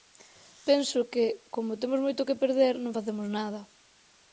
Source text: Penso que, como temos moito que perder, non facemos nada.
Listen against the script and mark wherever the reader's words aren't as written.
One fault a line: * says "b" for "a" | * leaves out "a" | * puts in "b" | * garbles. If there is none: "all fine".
all fine